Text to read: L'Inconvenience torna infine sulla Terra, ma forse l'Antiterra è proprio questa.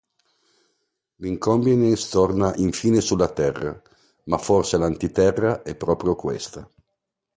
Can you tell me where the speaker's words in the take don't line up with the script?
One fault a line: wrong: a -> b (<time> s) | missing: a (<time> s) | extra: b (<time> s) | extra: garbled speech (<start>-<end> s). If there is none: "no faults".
no faults